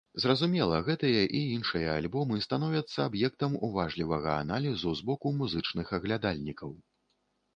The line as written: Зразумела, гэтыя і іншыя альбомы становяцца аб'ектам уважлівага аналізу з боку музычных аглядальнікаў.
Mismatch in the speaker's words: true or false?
false